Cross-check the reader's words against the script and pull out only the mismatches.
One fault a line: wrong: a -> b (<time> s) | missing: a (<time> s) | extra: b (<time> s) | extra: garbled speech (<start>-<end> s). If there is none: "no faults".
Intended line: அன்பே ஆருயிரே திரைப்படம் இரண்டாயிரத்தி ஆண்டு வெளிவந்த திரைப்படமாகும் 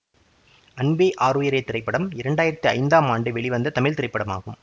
extra: ஐந்தாம் (2.7 s)
extra: தமிழ் (3.7 s)